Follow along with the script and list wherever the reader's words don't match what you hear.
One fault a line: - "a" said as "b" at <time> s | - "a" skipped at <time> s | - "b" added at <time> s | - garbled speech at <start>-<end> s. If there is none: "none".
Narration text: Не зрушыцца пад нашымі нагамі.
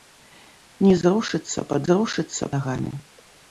- "нашымі" said as "зрушыцца" at 1.9 s